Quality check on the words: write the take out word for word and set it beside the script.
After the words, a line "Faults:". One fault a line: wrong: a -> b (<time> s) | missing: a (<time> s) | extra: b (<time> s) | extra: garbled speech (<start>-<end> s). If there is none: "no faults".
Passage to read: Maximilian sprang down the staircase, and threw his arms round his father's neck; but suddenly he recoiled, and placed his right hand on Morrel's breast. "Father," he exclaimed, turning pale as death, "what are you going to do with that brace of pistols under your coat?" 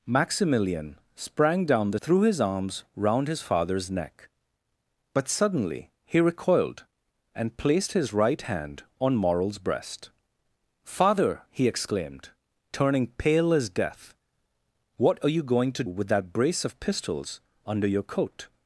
Maximilian sprang down the threw his arms round his father's neck; but suddenly he recoiled, and placed his right hand on Morrel's breast. "Father," he exclaimed, turning pale as death, "what are you going to with that brace of pistols under your coat?"
Faults:
missing: staircase and (2.0 s)
missing: do (15.8 s)